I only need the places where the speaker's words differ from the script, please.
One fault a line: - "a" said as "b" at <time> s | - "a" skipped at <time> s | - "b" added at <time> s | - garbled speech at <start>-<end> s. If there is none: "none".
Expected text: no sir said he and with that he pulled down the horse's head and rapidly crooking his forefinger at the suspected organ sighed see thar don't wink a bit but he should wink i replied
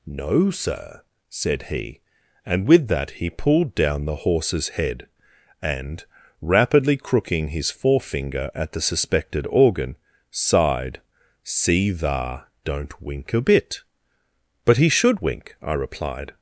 none